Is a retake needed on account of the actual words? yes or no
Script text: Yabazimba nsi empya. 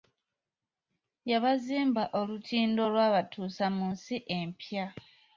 yes